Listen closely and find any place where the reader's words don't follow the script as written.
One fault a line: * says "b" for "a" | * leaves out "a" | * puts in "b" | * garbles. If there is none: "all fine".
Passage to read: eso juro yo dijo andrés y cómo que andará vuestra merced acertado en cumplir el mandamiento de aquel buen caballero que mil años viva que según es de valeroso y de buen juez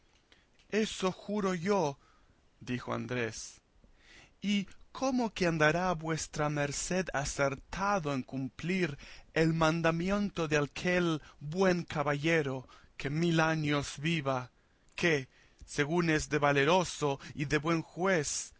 all fine